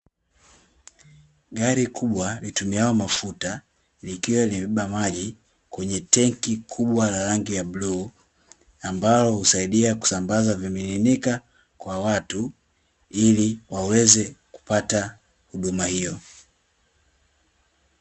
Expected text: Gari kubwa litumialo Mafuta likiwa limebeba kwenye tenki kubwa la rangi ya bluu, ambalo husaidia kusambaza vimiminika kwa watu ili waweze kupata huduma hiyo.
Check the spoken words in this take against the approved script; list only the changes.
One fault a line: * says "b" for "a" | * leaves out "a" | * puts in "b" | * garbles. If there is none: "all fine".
* puts in "maji"